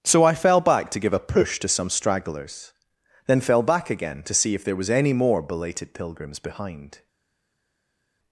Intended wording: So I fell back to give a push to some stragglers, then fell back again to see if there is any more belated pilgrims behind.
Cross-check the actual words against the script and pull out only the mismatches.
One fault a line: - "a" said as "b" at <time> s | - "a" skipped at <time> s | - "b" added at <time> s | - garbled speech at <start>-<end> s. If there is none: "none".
- "is" said as "was" at 4.8 s